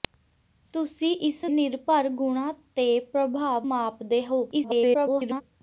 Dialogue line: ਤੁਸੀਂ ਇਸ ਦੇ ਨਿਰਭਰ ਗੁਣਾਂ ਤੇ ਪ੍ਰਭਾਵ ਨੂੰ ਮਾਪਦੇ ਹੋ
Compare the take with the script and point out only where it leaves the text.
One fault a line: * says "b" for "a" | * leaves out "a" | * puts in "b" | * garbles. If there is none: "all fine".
* leaves out "ਦੇ"
* leaves out "ਨੂੰ"
* garbles